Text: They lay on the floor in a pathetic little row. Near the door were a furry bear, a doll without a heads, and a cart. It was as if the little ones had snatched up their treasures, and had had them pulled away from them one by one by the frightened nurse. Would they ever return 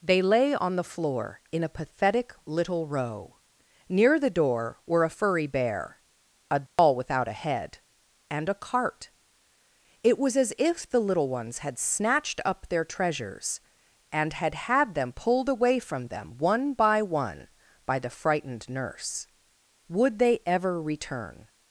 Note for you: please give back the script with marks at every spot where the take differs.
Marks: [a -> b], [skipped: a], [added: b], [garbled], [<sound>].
They lay on the floor in a pathetic little row. Near the door were a furry bear, a doll [dropout] without a [heads, -> head] and a cart. It was as if the little ones had snatched up their treasures, and had had them pulled away from them one by one by the frightened nurse. Would they ever return